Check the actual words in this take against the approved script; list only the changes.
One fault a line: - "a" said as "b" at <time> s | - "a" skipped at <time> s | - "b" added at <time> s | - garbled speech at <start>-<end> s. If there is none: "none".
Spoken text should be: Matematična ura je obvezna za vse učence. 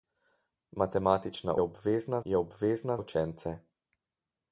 - "ura" said as "obvezna" at 1.6 s
- "za vse" skipped at 3.0 s